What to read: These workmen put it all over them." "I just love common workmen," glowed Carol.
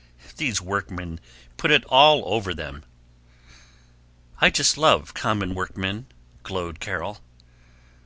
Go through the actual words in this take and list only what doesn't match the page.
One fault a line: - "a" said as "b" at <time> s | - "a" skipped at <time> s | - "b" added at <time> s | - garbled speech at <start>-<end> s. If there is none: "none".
none